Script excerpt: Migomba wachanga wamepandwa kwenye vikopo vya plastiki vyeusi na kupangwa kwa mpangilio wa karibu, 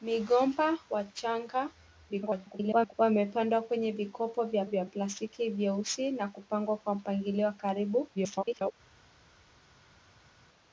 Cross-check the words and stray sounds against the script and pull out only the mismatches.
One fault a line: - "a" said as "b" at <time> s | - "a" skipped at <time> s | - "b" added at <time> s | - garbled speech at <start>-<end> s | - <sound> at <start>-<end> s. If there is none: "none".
- garbled speech at 2.1-2.9 s
- "vya" added at 4.6 s
- garbled speech at 8.1-8.7 s